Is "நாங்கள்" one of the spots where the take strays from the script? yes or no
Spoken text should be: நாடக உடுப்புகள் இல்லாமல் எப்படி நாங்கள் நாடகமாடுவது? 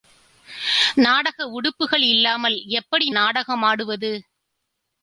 yes